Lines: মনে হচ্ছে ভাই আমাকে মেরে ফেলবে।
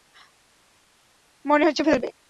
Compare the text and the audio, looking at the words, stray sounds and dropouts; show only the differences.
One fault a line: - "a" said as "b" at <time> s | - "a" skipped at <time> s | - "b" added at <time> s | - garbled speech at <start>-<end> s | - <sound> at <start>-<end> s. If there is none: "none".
- "ভাই আমাকে মেরে" skipped at 1.8 s